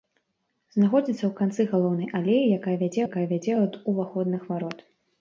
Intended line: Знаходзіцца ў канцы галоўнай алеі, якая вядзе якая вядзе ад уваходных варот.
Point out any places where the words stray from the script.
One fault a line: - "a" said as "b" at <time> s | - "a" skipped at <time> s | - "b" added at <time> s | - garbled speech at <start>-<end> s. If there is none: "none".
none